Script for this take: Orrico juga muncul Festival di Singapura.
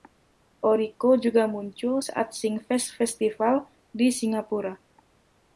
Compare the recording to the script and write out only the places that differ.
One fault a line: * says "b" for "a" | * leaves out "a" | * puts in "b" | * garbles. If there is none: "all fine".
* puts in "saat Singfest"